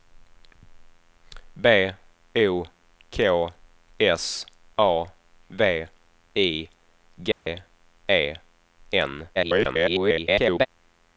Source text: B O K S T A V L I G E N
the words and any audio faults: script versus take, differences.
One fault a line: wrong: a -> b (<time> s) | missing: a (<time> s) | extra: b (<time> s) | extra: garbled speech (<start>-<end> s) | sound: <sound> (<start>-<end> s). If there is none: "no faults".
missing: T (4.5 s)
missing: L (5.9 s)
sound: dropout (7.3-7.5 s)
extra: garbled speech (9.4-10.7 s)